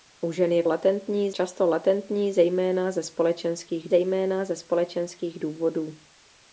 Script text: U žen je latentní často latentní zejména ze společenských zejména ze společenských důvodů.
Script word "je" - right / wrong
right